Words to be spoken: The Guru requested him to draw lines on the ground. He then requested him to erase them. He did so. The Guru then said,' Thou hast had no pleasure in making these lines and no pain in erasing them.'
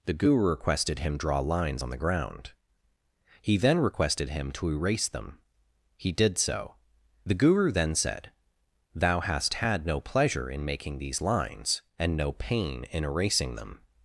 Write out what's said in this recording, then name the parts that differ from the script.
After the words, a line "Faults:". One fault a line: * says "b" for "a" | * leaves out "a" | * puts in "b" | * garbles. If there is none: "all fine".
The Guru requested him draw lines on the ground. He then requested him to erase them. He did so. The Guru then said,' Thou hast had no pleasure in making these lines and no pain in erasing them.'
Faults:
* leaves out "to"